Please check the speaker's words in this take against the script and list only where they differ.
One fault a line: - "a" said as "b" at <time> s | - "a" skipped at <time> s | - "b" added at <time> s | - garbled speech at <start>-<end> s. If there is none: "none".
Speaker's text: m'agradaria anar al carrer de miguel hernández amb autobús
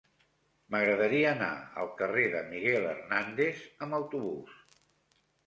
none